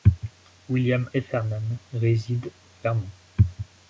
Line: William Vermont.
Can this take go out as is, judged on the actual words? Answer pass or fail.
fail